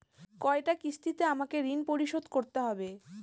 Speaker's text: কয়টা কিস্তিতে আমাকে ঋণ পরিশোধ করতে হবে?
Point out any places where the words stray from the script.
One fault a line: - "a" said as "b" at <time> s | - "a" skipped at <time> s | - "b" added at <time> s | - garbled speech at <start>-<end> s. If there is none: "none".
none